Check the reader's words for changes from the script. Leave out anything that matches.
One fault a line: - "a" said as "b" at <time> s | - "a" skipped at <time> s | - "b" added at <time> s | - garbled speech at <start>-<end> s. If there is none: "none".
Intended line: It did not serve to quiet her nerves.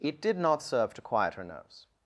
none